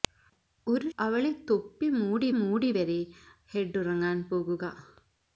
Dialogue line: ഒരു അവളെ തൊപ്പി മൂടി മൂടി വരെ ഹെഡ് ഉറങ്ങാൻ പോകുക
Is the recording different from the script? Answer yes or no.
no